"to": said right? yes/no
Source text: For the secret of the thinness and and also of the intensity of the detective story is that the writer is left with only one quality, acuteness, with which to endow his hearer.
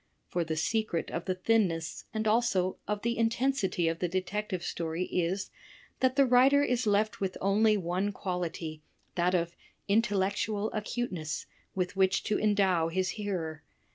yes